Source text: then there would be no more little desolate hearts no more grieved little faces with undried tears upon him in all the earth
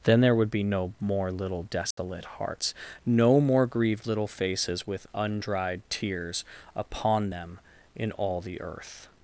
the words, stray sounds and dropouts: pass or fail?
fail